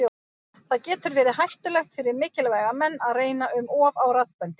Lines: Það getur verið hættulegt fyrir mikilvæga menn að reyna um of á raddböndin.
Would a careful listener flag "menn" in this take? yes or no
no